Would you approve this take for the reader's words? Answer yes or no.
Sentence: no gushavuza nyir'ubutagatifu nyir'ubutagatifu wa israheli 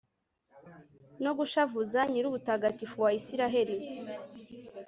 no